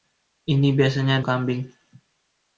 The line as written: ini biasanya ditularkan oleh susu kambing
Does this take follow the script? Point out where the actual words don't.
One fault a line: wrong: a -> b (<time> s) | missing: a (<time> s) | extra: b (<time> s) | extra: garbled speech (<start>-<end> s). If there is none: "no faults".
missing: ditularkan oleh susu (1.2 s)